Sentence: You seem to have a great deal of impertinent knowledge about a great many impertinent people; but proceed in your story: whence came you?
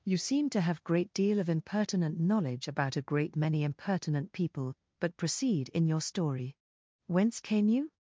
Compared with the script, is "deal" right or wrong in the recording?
right